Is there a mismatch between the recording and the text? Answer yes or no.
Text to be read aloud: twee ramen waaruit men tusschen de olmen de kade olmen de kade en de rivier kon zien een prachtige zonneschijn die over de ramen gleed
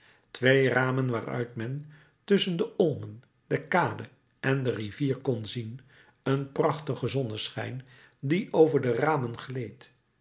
yes